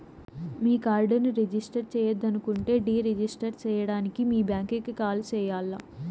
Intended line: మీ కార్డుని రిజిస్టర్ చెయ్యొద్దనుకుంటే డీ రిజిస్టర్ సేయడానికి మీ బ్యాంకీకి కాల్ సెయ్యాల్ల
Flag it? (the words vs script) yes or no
no